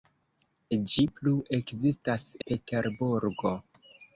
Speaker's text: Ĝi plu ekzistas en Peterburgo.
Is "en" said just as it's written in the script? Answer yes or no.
no